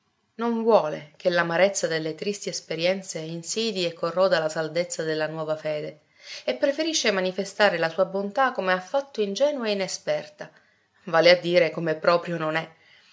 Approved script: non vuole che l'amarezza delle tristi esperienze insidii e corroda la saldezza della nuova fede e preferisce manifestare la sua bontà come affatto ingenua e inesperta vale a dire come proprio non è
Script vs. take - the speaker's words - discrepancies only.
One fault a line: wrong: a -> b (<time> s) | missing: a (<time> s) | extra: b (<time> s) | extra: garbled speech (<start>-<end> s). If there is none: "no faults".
no faults